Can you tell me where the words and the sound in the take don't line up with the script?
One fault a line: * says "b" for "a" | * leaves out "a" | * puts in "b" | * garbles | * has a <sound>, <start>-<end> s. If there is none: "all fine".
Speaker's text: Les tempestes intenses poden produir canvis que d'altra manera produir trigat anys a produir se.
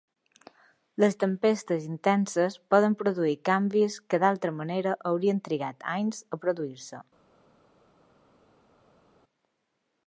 * says "haurien" for "produir"